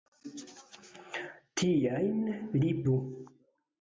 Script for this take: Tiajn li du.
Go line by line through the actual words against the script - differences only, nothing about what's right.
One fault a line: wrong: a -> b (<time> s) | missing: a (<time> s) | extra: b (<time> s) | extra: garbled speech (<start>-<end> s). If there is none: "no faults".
no faults